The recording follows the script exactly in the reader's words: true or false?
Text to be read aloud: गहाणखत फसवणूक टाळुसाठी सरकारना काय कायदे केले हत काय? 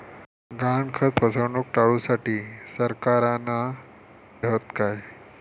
false